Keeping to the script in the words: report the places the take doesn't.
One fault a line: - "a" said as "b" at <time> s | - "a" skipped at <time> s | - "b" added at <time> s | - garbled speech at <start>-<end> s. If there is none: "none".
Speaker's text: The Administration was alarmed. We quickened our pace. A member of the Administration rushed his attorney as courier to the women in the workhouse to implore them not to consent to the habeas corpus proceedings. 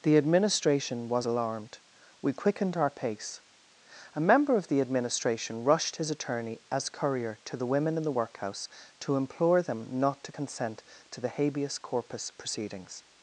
none